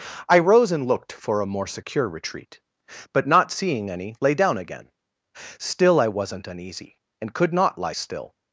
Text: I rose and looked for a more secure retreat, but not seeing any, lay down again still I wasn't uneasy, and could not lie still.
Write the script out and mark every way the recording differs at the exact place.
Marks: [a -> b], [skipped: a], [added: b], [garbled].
I rose and looked for a more secure retreat, but not seeing any, lay down again still I wasn't uneasy, and could not lie still.